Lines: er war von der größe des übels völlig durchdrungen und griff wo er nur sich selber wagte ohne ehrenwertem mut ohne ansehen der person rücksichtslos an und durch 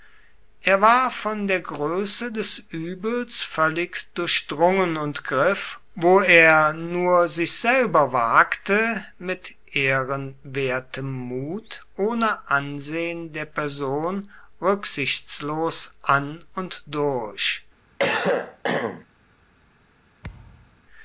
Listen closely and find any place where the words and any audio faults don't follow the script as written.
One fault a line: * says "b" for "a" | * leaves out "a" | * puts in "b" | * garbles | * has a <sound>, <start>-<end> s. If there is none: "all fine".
* says "mit" for "ohne"
* has a cough, 18.0-19.1 s
* has a thud, 20.2-20.8 s